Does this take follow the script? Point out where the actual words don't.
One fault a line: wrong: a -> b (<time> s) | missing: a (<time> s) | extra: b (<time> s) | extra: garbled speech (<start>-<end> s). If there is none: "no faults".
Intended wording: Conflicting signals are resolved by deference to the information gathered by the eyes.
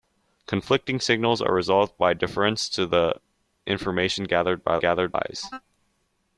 wrong: the -> gathered (4.8 s)